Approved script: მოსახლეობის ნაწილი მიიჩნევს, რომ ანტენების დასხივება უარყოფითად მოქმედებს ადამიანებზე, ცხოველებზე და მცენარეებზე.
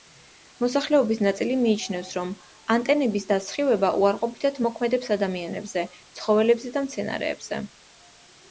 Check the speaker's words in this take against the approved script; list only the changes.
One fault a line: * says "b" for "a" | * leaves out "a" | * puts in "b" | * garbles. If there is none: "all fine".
all fine